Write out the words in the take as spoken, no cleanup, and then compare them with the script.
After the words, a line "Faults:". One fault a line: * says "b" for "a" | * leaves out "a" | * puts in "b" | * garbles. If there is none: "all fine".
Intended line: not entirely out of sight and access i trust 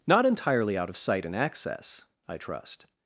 not entirely out of sight and access i trust
Faults:
all fine